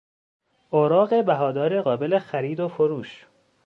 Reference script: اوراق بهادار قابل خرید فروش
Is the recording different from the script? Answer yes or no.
yes